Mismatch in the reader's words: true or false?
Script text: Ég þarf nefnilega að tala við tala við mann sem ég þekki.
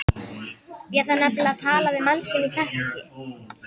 true